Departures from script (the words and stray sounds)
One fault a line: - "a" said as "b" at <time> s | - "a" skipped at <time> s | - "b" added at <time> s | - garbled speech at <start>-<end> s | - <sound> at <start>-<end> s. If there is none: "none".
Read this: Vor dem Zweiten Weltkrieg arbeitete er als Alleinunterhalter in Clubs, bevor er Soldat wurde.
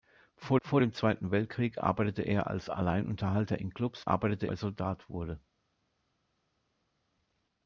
- "vor" added at 0.6 s
- "bevor" said as "arbeitete" at 4.0 s